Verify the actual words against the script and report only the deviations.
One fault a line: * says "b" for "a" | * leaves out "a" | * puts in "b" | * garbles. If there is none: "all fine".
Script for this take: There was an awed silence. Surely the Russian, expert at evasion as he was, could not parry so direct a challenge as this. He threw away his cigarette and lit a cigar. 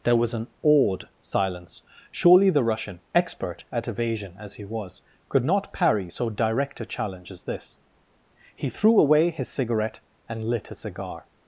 all fine